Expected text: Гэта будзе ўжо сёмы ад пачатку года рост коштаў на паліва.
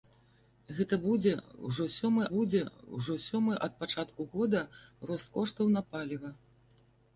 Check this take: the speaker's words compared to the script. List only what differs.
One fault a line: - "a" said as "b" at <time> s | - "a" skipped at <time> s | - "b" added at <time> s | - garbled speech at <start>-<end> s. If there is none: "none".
- "будзе ўжо сёмы" added at 2.3 s